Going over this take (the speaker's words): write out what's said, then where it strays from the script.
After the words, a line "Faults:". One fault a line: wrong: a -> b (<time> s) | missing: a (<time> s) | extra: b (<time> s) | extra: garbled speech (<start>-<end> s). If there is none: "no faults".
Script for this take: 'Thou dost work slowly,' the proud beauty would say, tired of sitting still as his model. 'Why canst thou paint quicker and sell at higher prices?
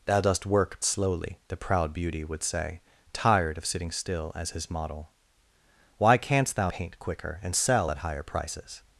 'Thou dost work slowly,' the proud beauty would say, tired of sitting still as his model. 'Why canst thou paint quicker and sell at higher prices?
Faults:
no faults